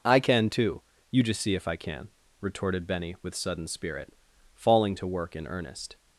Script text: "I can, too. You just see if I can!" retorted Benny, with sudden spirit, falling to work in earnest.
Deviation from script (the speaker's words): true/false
false